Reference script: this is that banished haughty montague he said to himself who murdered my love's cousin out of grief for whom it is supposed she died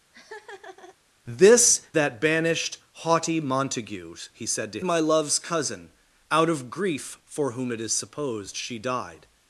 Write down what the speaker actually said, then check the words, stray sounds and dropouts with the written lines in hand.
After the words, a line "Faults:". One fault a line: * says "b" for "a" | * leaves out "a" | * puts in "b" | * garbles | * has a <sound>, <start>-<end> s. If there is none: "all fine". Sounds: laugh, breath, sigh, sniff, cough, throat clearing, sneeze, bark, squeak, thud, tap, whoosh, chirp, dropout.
this that banished haughty montague he said to my love's cousin out of grief for whom it is supposed she died
Faults:
* has a laugh, 0.1-1.0 s
* leaves out "is"
* leaves out "himself who murdered"